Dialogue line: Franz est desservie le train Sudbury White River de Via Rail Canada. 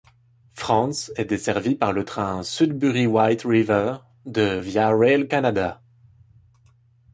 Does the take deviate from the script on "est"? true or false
false